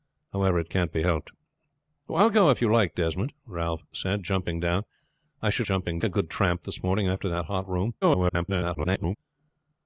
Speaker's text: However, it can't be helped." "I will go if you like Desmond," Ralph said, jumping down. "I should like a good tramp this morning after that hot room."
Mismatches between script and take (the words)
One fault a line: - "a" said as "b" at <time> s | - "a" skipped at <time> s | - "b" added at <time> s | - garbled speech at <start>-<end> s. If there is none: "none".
- "like" said as "jumping" at 5.6 s
- garbled speech at 8.0-9.2 s